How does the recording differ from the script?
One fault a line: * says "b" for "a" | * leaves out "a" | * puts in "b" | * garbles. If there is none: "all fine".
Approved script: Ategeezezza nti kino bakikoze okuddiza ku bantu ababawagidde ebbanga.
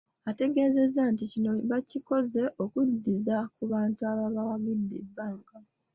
all fine